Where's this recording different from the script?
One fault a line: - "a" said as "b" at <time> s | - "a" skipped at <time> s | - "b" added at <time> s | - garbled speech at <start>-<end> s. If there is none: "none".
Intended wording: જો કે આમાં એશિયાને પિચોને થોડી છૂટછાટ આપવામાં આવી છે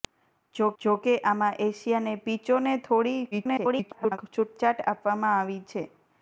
- "જો" added at 0.8 s
- garbled speech at 3.3-4.2 s